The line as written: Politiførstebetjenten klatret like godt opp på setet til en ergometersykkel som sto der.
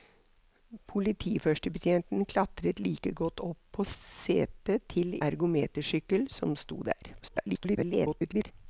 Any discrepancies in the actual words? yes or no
yes